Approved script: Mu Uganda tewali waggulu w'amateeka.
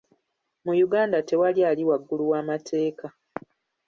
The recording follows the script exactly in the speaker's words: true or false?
false